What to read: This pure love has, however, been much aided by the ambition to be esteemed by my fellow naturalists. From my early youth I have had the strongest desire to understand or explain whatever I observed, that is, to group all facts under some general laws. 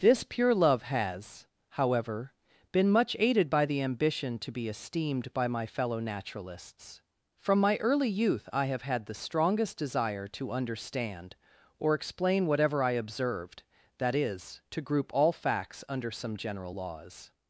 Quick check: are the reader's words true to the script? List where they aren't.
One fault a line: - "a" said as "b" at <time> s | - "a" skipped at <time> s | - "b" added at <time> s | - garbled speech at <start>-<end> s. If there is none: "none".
none